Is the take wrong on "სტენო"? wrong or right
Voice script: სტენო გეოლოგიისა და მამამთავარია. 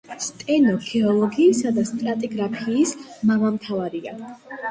right